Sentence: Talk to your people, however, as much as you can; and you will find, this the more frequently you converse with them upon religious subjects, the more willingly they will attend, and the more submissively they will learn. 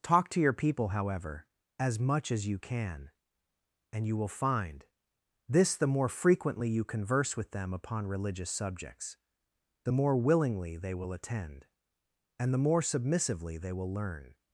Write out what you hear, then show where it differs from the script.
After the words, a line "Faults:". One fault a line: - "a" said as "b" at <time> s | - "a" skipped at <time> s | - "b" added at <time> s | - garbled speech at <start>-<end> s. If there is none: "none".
Talk to your people, however, as much as you can; and you will find, this the more frequently you converse with them upon religious subjects, the more willingly they will attend, and the more submissively they will learn.
Faults:
none